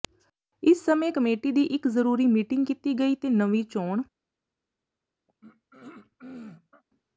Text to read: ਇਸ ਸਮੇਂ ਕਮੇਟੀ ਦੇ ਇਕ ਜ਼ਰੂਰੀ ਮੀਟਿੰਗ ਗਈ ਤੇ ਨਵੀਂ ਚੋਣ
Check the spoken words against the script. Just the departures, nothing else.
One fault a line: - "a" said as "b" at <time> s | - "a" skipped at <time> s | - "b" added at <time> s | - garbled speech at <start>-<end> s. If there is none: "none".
- "ਦੇ" said as "ਦੀ" at 1.5 s
- "ਕੀਤੀ" added at 2.6 s